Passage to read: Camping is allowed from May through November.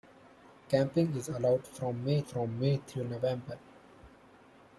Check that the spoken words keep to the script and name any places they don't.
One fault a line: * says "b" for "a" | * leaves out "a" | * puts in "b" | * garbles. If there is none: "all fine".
* puts in "from May"